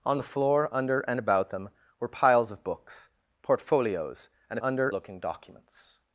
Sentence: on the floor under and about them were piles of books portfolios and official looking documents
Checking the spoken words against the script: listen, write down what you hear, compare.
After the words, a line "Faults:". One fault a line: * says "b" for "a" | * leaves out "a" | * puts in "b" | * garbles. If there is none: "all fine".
on the floor under and about them were piles of books portfolios and under looking documents
Faults:
* says "under" for "official"